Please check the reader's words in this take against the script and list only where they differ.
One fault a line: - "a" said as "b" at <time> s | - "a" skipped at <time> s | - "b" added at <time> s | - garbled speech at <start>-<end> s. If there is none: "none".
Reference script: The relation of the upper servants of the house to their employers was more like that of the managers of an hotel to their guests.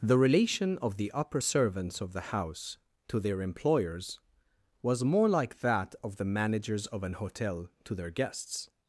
none